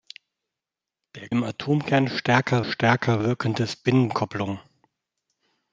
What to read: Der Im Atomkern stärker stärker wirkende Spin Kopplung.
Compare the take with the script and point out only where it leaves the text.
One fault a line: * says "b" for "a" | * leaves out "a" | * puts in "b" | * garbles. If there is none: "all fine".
all fine